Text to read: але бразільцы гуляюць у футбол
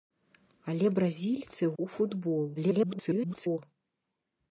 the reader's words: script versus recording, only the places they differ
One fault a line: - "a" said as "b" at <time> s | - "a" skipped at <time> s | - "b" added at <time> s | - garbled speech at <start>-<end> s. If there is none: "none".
- "гуляюць" skipped at 1.7 s
- garbled speech at 2.6-3.6 s